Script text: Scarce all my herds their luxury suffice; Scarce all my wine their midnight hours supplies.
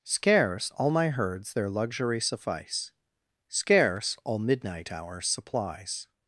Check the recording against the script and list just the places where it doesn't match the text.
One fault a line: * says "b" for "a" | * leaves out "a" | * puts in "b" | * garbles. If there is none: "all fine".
* leaves out "my wine their"